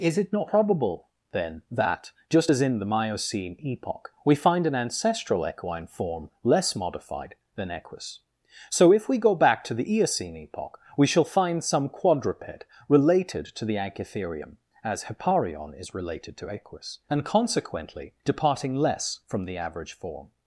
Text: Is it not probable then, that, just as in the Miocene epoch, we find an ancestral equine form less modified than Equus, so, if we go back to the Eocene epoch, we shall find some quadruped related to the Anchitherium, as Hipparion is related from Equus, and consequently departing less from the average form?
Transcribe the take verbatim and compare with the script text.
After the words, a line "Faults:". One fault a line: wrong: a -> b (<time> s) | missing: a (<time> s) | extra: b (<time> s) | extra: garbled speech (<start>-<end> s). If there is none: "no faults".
Is it not probable then, that, just as in the Miocene epoch, we find an ancestral equine form less modified than Equus, so, if we go back to the Eocene epoch, we shall find some quadruped related to the Anchitherium, as Hipparion is related to Equus, and consequently departing less from the average form?
Faults:
wrong: from -> to (16.4 s)